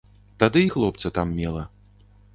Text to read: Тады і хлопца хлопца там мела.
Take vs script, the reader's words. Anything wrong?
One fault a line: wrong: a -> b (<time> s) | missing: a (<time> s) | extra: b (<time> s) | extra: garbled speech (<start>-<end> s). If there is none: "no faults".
missing: хлопца (1.1 s)